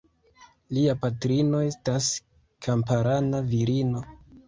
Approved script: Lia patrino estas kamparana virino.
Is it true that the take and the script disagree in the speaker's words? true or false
false